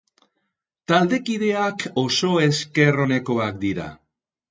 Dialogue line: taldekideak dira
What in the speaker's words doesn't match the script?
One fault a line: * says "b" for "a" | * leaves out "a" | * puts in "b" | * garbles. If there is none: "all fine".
* puts in "oso esker onekoak"